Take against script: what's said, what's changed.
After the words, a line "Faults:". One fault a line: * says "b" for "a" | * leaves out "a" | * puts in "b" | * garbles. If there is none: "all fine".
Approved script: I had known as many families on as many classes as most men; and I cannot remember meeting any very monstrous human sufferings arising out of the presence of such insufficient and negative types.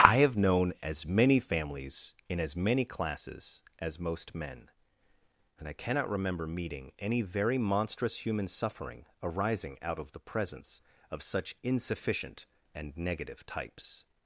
I have known as many families in as many classes as most men; and I cannot remember meeting any very monstrous human suffering arising out of the presence of such insufficient and negative types.
Faults:
* says "have" for "had"
* says "in" for "on"
* says "suffering" for "sufferings"